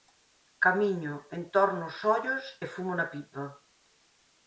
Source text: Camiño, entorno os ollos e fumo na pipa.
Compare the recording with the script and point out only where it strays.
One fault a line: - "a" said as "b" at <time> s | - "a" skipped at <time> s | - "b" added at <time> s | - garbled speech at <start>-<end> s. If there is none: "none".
none